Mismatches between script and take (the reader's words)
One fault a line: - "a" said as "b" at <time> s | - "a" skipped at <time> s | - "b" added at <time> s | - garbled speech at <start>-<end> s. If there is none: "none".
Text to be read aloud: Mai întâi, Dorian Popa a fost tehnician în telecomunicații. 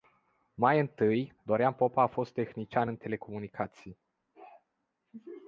none